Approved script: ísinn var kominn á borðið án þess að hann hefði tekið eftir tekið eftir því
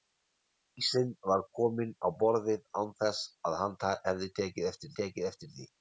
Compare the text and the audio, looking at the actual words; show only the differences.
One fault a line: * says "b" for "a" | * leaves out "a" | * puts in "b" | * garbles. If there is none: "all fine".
all fine